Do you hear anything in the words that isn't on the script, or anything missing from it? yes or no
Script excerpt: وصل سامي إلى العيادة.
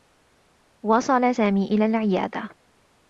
no